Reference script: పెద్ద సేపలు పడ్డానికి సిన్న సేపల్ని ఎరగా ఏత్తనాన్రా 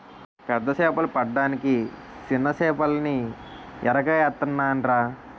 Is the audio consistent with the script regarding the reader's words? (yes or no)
yes